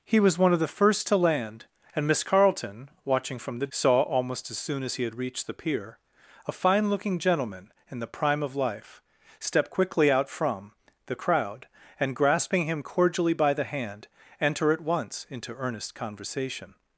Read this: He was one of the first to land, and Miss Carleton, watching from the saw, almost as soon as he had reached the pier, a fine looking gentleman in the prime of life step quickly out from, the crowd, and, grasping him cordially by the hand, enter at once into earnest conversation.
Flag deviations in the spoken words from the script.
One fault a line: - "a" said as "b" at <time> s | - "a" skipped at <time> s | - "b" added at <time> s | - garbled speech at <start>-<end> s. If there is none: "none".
none